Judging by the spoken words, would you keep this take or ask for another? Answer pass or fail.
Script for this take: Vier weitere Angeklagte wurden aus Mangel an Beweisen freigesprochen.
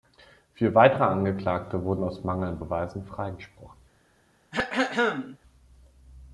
pass